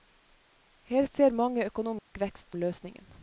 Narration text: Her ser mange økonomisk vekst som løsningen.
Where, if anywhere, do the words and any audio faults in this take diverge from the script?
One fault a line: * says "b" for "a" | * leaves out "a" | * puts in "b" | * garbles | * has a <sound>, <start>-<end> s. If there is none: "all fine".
* has a dropout, 2.0-2.1 s
* leaves out "som"